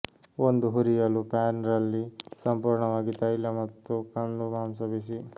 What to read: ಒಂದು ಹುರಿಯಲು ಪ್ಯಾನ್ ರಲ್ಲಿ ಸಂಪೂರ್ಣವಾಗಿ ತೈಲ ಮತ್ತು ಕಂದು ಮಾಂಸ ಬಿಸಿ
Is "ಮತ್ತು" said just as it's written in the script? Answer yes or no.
yes